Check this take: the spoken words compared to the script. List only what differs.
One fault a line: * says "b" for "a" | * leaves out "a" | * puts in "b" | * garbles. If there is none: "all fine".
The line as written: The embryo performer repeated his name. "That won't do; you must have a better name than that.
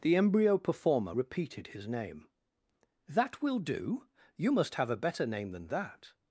* says "will" for "won't"